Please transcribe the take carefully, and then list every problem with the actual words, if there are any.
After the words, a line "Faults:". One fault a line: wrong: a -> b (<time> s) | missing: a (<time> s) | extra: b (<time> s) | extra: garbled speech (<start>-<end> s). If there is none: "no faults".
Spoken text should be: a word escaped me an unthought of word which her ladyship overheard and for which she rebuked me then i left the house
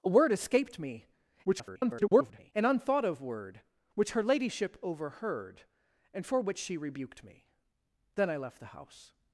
a word escaped me [garbled] an unthought of word which her ladyship overheard and for which she rebuked me then i left the house
Faults:
extra: garbled speech (1.4-2.5 s)